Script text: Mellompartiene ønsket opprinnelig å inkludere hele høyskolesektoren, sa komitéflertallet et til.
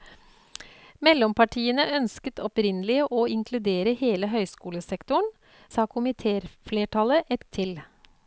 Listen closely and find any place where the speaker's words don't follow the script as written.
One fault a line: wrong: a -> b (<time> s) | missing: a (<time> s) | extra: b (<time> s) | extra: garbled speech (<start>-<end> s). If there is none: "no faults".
no faults